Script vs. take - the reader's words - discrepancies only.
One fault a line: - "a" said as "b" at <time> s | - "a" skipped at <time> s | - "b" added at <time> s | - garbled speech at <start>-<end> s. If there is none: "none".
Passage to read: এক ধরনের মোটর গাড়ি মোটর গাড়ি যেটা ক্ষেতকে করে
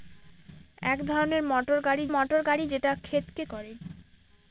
none